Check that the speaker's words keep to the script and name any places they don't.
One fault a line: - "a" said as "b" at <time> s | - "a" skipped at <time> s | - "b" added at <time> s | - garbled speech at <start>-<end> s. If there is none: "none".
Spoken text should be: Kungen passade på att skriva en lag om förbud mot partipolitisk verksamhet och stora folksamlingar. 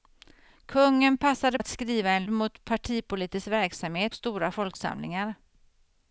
- "på" skipped at 1.6 s
- "lag om förbud" skipped at 2.2 s
- "och" skipped at 4.1 s